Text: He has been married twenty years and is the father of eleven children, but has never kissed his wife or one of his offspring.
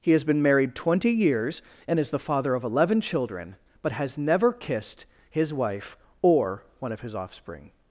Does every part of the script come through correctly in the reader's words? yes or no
yes